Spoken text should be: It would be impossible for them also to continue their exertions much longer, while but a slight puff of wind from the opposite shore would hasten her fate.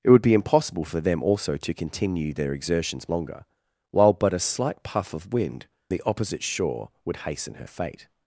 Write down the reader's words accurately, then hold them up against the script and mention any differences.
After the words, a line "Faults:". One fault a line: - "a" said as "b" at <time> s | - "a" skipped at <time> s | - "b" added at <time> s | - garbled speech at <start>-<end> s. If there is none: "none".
It would be impossible for them also to continue their exertions longer, while but a slight puff of wind the opposite shore would hasten her fate.
Faults:
- "much" skipped at 3.1 s
- "from" skipped at 5.7 s